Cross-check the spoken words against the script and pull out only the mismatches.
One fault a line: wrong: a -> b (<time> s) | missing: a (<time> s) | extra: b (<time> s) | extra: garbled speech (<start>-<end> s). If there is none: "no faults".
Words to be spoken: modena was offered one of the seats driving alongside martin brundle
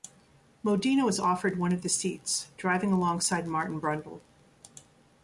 no faults